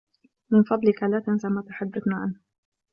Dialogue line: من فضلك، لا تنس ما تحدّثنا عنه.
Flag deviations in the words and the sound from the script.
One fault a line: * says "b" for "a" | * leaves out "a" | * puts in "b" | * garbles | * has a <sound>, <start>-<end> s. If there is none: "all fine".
all fine